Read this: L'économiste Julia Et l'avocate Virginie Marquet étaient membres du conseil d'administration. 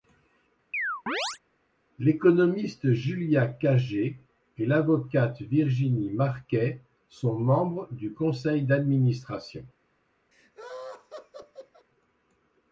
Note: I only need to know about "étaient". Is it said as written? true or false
false